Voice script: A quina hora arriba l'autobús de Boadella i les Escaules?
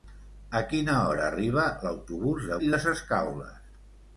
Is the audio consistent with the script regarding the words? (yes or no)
no